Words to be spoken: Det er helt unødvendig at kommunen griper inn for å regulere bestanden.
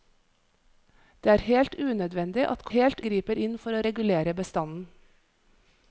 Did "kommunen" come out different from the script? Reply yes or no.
yes